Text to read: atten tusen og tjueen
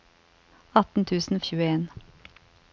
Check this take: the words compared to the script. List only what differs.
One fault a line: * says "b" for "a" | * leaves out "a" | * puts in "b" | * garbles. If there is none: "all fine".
all fine